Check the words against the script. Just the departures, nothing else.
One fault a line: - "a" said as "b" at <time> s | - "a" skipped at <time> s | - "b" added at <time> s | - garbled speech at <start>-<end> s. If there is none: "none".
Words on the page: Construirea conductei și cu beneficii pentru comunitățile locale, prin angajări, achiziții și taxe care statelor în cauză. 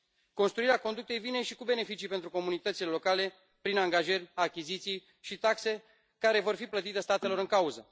- "vine" added at 1.2 s
- "vor fi plătite" added at 6.4 s